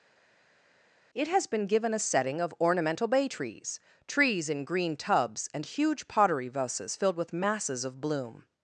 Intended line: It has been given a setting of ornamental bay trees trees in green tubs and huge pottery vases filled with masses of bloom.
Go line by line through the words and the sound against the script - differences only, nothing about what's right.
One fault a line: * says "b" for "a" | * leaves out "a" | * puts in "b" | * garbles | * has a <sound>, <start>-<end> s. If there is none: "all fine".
all fine